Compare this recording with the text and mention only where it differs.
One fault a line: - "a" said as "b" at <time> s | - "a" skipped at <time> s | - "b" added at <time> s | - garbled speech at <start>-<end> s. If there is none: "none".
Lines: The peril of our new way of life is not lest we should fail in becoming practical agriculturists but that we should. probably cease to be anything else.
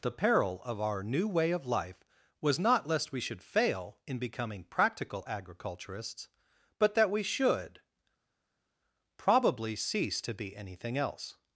- "is" said as "was" at 2.4 s